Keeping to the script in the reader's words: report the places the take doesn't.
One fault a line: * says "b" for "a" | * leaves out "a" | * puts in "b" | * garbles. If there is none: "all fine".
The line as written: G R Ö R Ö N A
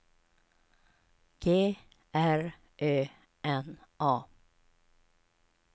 * leaves out "R Ö"